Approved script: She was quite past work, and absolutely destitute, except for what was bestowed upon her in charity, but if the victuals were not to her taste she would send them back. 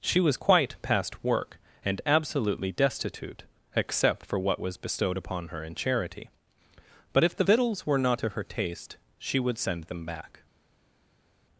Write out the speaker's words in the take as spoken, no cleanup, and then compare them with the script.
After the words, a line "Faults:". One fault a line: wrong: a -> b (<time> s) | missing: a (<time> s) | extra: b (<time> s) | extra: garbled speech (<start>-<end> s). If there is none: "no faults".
She was quite past work, and absolutely destitute, except for what was bestowed upon her in charity, but if the victuals were not to her taste she would send them back.
Faults:
no faults